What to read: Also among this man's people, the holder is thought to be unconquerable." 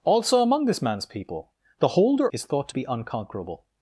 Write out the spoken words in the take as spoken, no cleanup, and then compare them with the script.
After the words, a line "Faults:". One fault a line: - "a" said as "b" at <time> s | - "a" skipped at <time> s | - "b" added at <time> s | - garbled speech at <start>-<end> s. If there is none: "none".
Also among this man's people, the holder is thought to be unconquerable."
Faults:
none